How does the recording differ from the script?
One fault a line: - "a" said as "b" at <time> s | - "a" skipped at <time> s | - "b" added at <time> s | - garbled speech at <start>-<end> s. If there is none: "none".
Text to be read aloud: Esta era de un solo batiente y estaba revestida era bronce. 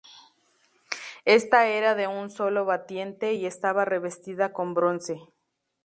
- "era" said as "con" at 4.5 s